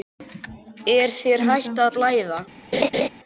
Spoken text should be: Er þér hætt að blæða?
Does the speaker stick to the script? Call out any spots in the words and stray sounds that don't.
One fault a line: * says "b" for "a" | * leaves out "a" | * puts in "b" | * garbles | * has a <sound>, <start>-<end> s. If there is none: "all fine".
* has a laugh, 2.7-3.1 s